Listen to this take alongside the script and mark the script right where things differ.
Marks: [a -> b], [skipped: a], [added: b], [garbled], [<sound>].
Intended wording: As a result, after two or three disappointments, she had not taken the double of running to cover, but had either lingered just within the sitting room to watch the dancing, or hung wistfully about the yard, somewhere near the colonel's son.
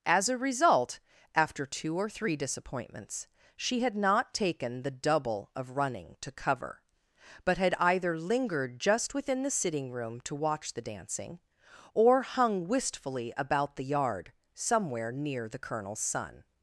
As a result, after two or three disappointments, she had not taken the double of running to cover, but had either lingered just within the sitting room to watch the dancing, or hung wistfully about the yard, somewhere near the colonel's son.